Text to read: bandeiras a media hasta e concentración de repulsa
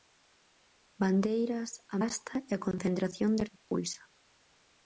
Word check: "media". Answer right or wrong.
wrong